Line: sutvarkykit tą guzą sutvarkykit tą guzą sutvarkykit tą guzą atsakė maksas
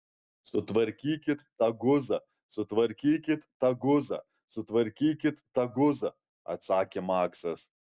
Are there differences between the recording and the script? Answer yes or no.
no